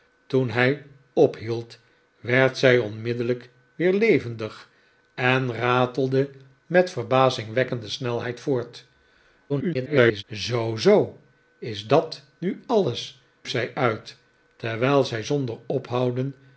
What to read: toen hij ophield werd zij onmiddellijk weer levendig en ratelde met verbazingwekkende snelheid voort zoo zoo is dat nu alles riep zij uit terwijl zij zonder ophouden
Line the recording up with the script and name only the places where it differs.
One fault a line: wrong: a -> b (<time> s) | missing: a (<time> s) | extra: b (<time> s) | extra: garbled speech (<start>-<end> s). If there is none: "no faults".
extra: garbled speech (9.5-10.2 s)
missing: riep (13.2 s)